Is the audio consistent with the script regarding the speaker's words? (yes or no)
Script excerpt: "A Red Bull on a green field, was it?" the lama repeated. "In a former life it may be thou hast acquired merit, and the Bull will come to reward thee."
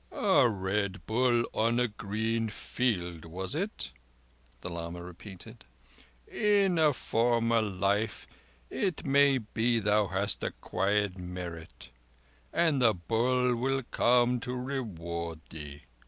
yes